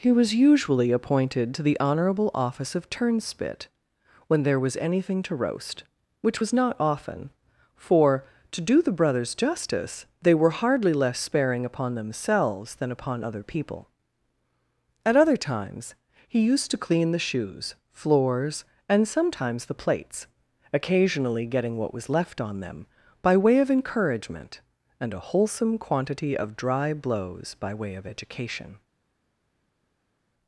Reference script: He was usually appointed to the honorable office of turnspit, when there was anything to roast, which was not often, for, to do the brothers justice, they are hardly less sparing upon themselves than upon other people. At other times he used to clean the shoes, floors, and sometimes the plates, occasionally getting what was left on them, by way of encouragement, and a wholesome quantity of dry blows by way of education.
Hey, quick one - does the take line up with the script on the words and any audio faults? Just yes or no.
no